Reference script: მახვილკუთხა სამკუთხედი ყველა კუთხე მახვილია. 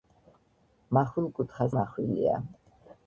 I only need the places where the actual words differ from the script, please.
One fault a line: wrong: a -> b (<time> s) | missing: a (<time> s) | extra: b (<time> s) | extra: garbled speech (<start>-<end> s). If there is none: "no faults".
missing: სამკუთხედი ყველა კუთხე (1.7 s)